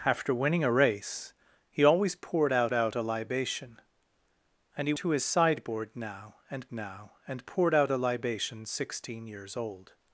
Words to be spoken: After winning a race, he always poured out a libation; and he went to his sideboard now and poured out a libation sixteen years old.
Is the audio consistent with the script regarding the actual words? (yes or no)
no